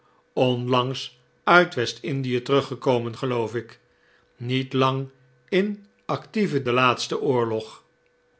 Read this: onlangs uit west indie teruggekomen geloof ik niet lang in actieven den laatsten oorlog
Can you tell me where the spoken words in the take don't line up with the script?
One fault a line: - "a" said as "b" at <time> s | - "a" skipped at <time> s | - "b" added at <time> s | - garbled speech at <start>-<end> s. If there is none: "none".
none